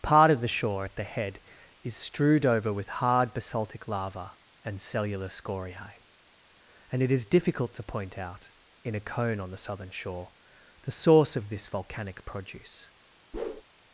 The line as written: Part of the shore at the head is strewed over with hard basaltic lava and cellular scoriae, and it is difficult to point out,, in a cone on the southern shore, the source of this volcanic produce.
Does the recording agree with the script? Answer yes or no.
yes